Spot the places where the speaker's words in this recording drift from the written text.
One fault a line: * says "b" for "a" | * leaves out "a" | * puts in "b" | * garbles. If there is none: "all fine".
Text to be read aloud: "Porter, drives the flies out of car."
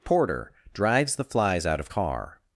all fine